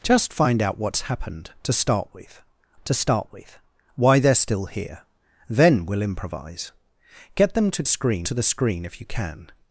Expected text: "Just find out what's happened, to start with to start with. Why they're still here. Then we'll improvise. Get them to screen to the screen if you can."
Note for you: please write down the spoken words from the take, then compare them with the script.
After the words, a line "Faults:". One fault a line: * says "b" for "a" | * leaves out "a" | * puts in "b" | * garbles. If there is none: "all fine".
"Just find out what's happened, to start with to start with. Why they're still here. Then we'll improvise. Get them to screen to the screen if you can."
Faults:
all fine